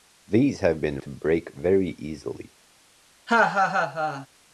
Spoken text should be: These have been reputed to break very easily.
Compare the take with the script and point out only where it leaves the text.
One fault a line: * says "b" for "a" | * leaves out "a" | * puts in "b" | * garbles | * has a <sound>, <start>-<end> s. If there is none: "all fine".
* leaves out "reputed"
* has a laugh, 3.3-4.3 s